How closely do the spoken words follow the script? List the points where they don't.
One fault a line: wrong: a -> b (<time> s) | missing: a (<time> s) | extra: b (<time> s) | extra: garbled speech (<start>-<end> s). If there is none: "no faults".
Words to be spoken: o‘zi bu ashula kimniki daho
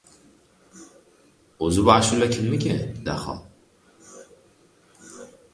no faults